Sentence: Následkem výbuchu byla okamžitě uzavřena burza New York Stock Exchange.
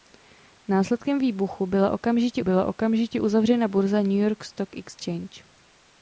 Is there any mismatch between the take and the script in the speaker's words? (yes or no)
yes